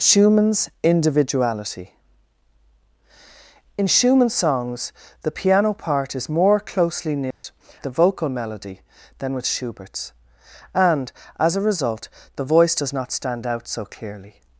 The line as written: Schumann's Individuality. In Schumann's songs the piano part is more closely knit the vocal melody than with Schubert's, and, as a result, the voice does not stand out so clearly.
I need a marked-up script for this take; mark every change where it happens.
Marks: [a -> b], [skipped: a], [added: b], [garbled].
Schumann's Individuality. In Schumann's songs the piano part is more closely knit the vocal melody than with Schubert's, and, as a result, the voice does not stand out so clearly.